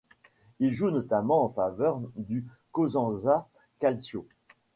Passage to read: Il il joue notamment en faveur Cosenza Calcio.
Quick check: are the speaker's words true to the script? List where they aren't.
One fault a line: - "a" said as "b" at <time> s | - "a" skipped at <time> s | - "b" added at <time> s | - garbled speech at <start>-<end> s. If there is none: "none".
- "il" skipped at 0.7 s
- "du" added at 2.2 s